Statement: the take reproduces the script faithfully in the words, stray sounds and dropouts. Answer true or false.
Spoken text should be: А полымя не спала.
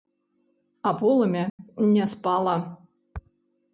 false